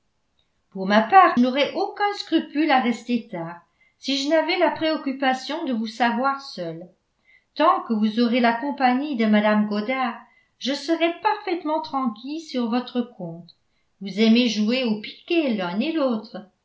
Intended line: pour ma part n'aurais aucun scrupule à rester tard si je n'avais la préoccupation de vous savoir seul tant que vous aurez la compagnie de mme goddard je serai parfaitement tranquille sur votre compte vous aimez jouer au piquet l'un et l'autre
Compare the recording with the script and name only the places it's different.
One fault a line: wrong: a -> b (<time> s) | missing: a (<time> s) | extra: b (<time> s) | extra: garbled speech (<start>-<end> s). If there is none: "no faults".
no faults